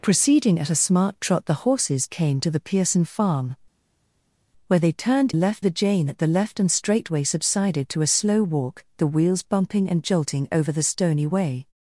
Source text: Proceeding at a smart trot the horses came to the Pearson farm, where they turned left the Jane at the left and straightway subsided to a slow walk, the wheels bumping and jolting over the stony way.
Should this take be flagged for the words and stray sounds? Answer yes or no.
no